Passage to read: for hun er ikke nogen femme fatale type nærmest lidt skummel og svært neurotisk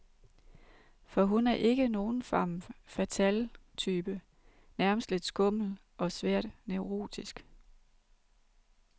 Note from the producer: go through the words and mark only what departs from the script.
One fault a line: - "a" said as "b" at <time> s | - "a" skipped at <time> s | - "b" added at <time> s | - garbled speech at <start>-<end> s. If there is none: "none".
none